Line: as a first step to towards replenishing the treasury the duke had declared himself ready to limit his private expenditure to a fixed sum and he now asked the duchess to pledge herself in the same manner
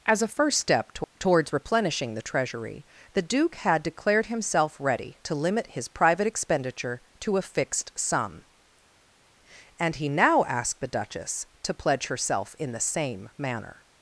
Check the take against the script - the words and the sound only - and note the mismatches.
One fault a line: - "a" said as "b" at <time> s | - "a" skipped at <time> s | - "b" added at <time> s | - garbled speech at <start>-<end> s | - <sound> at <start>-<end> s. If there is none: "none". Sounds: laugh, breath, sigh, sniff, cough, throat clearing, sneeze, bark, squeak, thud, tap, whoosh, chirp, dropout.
none